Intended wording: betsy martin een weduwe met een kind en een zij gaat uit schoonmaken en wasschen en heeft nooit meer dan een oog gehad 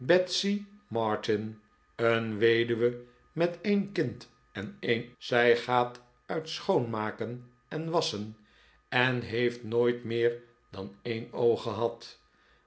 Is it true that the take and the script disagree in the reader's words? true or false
false